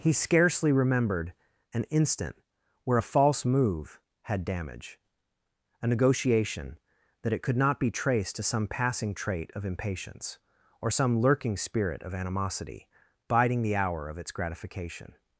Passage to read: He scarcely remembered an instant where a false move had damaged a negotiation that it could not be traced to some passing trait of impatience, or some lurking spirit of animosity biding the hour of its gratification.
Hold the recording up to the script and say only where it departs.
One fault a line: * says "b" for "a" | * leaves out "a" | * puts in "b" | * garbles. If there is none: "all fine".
* says "damage" for "damaged"